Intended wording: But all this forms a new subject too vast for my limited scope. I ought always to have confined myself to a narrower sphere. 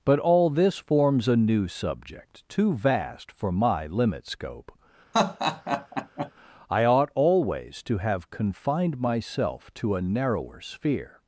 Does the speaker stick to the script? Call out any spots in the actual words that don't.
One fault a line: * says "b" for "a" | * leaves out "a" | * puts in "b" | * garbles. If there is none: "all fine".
* says "limit" for "limited"